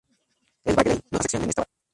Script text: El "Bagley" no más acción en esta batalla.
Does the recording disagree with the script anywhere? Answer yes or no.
no